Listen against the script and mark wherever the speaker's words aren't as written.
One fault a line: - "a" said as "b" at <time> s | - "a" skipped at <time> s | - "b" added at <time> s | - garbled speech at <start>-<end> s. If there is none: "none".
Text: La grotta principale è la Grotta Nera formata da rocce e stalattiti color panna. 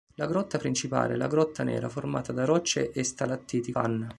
- "color" skipped at 3.7 s